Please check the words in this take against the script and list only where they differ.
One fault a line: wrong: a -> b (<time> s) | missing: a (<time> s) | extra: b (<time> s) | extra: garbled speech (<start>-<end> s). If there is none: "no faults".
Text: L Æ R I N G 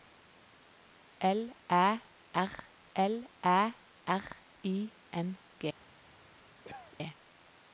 extra: l Æ R (3.0 s)